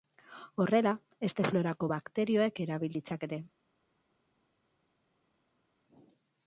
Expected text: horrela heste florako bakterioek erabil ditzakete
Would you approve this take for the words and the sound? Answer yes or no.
yes